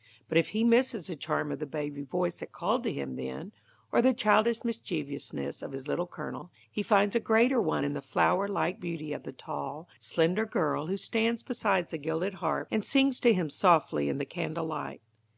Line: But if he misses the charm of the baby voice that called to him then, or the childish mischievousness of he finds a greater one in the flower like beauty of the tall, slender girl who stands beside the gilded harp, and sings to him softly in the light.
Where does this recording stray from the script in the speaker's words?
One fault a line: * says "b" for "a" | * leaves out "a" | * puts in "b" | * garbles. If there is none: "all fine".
* puts in "his Little Colonel"
* puts in "candle"